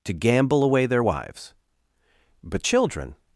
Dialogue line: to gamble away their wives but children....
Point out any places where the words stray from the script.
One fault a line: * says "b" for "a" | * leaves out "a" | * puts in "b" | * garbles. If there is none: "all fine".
all fine